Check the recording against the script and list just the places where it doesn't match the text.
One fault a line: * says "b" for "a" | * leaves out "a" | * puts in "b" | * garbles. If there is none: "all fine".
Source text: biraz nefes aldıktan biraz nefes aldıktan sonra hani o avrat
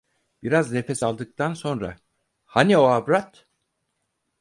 * leaves out "biraz nefes aldıktan"